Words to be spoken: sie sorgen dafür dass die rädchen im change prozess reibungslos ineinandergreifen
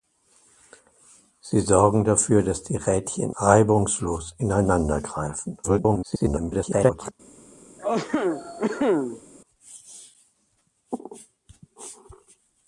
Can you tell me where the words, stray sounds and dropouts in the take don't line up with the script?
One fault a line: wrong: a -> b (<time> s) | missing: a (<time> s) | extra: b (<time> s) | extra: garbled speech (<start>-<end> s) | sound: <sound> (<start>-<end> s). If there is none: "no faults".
missing: im change prozess (3.4 s)
extra: garbled speech (5.6-7.1 s)
sound: cough (7.8-9.2 s)